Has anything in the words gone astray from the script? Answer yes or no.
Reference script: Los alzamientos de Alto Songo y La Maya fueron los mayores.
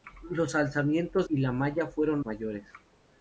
yes